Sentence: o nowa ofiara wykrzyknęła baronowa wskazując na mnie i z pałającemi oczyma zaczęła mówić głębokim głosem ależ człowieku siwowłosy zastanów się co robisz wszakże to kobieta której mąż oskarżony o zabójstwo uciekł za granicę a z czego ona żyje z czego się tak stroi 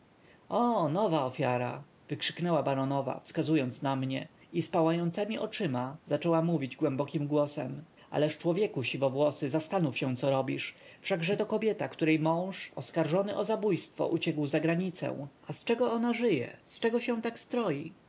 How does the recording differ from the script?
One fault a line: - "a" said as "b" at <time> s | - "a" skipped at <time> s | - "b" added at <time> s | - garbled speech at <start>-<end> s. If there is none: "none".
none